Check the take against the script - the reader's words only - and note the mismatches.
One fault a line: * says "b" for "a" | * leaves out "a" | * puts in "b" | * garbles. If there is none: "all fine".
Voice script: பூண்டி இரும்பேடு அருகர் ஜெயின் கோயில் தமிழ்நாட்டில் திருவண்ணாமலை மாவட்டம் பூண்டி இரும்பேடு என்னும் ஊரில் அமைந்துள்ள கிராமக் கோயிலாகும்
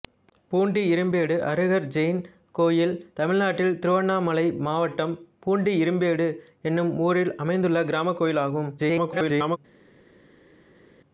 * garbles